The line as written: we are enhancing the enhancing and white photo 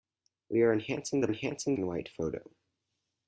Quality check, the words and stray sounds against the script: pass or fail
pass